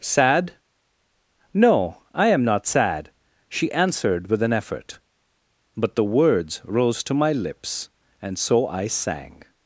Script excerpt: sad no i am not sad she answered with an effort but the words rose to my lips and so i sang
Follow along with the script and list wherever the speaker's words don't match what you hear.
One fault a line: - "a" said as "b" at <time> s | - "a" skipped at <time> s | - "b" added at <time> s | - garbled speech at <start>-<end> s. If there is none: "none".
none